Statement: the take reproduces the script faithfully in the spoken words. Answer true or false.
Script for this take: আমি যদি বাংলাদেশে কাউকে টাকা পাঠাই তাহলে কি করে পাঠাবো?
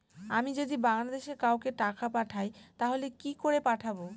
true